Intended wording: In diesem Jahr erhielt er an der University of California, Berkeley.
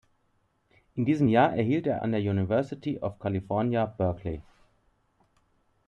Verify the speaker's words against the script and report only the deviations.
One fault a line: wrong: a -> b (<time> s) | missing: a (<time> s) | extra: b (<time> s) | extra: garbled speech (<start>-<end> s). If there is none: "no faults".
no faults